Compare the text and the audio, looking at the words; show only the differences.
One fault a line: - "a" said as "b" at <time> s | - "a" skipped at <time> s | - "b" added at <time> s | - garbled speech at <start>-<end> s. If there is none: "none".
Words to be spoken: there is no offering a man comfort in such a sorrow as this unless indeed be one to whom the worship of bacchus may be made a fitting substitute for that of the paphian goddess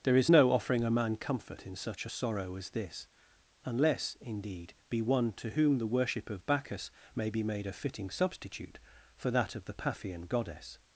none